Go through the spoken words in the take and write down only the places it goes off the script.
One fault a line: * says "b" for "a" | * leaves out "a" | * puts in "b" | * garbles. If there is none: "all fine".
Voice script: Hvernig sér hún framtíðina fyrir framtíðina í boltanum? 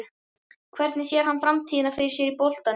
* says "hann" for "hún"
* says "sér" for "framtíðina"